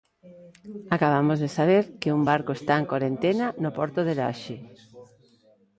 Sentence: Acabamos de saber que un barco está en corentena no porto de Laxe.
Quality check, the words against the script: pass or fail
pass